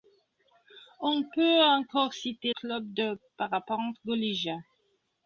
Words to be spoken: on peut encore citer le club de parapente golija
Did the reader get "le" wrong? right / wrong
wrong